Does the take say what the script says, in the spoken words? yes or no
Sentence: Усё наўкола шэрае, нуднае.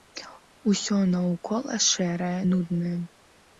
yes